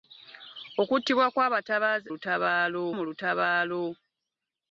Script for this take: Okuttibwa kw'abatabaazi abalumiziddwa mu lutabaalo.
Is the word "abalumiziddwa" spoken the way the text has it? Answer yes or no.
no